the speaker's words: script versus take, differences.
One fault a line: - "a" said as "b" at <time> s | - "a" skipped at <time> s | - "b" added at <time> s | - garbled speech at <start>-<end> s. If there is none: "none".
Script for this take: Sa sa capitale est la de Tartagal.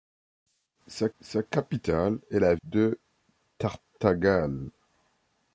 none